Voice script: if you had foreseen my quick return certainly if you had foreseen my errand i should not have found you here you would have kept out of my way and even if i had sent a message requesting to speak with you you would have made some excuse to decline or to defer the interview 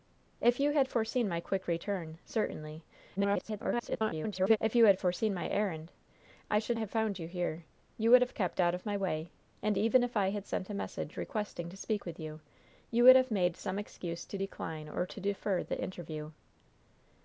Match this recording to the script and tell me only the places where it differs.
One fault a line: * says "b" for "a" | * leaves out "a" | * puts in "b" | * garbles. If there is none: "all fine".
* garbles
* leaves out "not"